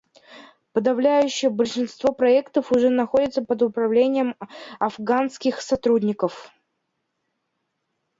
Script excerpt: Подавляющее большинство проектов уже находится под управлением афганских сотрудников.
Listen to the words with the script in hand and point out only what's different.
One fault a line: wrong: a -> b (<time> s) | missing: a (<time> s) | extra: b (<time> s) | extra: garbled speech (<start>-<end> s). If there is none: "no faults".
no faults